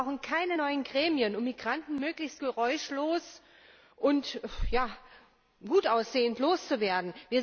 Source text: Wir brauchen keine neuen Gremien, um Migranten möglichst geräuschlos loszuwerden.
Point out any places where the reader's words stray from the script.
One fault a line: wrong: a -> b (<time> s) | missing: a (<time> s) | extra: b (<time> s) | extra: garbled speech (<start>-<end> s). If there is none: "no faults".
extra: und gut aussehend (3.9 s)